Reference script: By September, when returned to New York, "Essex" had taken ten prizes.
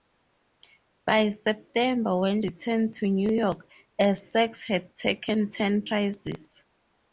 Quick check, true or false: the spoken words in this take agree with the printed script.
true